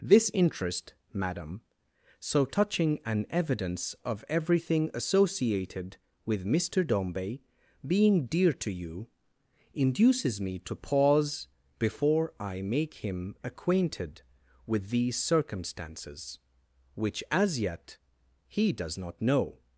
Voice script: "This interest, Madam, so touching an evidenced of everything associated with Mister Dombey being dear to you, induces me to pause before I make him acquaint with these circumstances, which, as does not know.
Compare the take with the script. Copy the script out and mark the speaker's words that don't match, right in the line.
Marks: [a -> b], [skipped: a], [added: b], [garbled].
"This interest, Madam, so touching an [evidenced -> evidence] of everything associated with Mister Dombey being dear to you, induces me to pause before I make him [acquaint -> acquainted] with these circumstances, which, as [added: yet he] does not know.